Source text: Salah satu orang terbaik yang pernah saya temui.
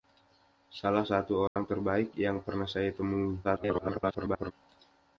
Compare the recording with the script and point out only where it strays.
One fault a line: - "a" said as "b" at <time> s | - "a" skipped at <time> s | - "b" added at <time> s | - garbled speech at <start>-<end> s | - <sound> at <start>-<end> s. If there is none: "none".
- dropout at 1.5-1.6 s
- garbled speech at 3.4-4.5 s